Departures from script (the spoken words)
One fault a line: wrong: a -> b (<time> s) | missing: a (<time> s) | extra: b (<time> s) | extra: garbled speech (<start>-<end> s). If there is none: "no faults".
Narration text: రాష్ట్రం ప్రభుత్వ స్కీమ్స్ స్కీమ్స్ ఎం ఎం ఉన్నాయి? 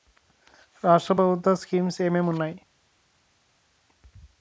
missing: స్కీమ్స్ (2.0 s)